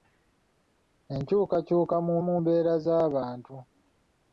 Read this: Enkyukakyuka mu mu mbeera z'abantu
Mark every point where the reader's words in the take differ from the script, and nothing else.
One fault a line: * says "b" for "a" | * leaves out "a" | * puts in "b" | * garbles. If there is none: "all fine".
all fine